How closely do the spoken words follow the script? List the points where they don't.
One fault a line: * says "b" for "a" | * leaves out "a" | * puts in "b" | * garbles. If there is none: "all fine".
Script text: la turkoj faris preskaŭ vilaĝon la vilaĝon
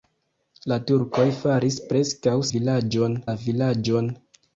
all fine